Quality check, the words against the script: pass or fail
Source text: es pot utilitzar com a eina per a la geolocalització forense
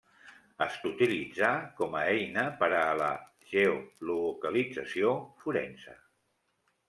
fail